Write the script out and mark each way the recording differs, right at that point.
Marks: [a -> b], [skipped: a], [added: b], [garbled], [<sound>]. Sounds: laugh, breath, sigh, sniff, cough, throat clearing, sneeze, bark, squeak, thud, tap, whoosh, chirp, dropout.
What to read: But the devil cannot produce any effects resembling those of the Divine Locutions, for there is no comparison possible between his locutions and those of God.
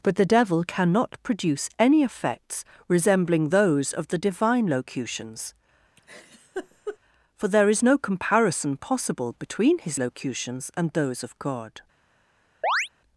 But the devil cannot produce any effects resembling those of the Divine Locutions, [laugh] for there is no comparison possible between his locutions and those of God. [chirp]